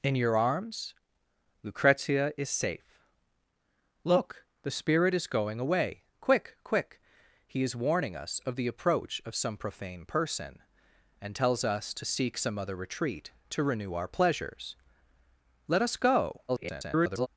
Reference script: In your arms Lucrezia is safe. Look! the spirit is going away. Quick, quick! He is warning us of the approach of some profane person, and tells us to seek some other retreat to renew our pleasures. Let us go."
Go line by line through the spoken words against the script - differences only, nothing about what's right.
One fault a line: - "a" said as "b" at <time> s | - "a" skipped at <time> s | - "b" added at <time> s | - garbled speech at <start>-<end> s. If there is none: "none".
- garbled speech at 16.5-17.3 s